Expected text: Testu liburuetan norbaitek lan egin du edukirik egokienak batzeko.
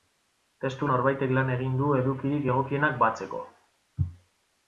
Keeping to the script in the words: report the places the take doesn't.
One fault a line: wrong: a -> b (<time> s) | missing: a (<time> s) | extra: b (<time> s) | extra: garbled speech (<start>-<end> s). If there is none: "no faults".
missing: liburuetan (0.9 s)